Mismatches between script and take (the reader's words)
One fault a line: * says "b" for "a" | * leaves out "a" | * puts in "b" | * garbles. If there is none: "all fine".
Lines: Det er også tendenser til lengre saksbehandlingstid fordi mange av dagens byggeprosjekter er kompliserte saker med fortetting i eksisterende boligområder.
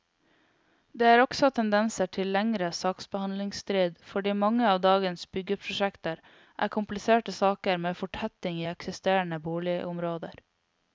all fine